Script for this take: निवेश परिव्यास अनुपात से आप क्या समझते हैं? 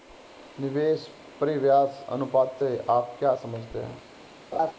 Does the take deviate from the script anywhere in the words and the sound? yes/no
yes